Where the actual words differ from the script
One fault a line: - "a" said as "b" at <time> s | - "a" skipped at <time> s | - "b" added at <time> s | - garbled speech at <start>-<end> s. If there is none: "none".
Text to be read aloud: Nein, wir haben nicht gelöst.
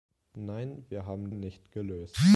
none